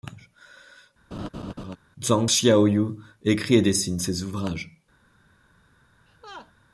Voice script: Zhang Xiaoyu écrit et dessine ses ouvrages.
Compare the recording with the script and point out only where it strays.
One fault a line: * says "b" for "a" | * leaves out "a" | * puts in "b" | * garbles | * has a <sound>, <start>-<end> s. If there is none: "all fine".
* has a laugh, 1.1-1.8 s
* has a laugh, 6.1-6.5 s